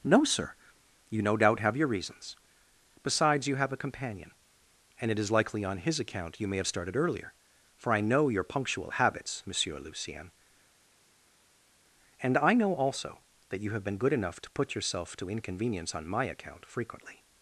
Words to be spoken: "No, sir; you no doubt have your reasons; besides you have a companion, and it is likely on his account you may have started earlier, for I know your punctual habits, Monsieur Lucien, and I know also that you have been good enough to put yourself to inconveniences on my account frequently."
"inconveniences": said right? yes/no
no